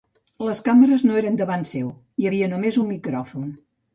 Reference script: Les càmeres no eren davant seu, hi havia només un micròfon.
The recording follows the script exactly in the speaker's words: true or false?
true